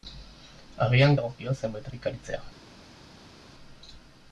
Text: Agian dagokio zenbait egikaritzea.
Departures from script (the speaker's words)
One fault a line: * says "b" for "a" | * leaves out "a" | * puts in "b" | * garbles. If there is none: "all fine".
all fine